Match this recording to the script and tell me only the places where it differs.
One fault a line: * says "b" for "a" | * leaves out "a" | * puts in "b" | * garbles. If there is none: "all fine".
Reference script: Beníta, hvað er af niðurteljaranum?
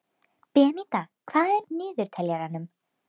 all fine